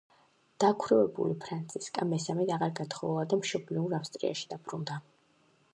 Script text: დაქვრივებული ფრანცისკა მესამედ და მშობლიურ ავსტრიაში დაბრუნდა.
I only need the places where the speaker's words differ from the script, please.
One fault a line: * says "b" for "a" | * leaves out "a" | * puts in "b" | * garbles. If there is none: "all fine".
* puts in "აღარ გათხოვილა"